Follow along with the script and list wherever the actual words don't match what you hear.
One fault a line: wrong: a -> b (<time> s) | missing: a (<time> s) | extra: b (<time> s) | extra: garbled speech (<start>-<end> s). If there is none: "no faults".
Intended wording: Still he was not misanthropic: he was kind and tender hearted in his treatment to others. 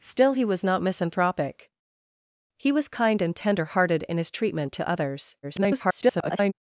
extra: garbled speech (5.4-6.5 s)